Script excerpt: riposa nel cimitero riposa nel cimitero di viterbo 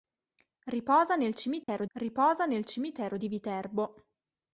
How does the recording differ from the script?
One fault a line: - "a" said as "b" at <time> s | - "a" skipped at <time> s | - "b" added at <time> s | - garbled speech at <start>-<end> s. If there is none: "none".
none